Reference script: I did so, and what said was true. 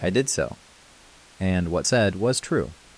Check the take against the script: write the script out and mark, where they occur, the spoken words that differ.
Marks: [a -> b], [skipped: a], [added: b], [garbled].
I did so, and what said was true.